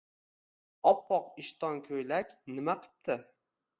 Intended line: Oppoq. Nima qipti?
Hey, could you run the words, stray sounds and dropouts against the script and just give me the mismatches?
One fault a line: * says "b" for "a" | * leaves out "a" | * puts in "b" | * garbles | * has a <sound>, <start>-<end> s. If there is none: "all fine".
* puts in "ishton ko‘ylak"